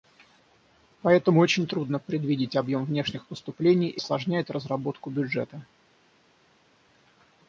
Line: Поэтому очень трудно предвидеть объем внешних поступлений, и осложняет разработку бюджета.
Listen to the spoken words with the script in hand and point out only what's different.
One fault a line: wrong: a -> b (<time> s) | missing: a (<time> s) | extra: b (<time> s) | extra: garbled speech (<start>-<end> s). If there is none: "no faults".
no faults